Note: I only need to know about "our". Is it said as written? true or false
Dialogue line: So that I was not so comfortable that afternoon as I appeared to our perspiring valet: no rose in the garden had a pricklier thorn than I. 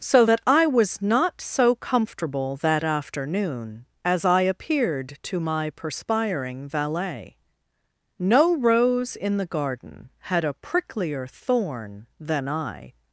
false